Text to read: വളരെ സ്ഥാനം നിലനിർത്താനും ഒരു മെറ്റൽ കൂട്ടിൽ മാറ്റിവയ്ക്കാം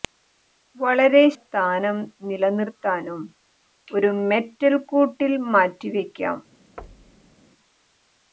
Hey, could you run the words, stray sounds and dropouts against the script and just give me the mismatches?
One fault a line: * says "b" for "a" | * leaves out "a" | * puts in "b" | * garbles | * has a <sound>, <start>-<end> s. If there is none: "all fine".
* has a thud, 6.8-7.3 s